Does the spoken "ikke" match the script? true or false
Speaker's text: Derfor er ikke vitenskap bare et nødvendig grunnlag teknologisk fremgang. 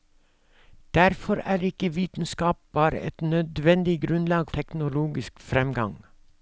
true